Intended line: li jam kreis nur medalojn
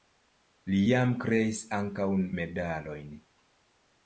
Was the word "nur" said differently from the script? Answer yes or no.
yes